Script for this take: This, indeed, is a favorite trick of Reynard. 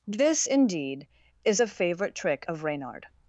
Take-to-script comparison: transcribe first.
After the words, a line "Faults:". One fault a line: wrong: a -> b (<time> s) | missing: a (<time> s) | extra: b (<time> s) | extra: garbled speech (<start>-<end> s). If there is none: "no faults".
This, indeed, is a favorite trick of Reynard.
Faults:
no faults